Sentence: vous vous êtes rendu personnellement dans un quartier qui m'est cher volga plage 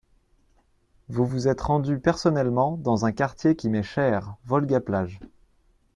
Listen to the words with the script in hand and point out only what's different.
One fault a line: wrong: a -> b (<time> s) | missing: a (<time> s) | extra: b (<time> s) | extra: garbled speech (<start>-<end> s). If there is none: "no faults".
no faults